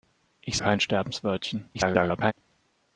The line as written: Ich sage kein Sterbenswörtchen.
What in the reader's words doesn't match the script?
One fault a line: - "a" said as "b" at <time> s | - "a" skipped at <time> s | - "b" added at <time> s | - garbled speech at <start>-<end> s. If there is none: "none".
- "sage" skipped at 0.6 s
- garbled speech at 1.7-2.3 s